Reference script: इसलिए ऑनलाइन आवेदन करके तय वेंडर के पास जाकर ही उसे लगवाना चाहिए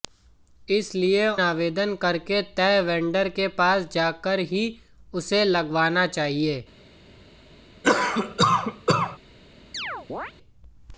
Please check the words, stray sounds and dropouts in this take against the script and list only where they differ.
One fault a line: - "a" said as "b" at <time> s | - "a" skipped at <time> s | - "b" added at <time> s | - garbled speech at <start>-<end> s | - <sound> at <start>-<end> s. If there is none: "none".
- "ऑनलाइन" skipped at 1.3 s
- cough at 7.8-9.2 s
- chirp at 9.7-10.3 s